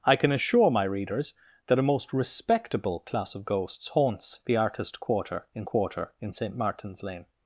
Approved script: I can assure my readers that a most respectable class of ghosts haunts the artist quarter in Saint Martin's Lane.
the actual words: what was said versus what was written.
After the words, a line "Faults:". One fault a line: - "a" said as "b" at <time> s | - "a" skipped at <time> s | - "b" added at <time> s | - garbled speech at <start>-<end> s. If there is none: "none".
I can assure my readers that a most respectable class of ghosts haunts the artist quarter in quarter in Saint Martin's Lane.
Faults:
- "quarter in" added at 5.6 s